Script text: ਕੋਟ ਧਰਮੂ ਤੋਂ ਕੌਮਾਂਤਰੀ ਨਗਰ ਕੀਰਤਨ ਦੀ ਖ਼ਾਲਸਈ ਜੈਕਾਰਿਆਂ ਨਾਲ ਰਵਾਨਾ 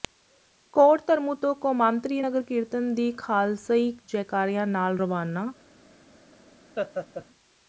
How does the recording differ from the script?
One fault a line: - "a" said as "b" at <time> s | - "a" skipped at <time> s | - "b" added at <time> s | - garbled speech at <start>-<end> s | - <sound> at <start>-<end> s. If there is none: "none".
- laugh at 6.8-7.3 s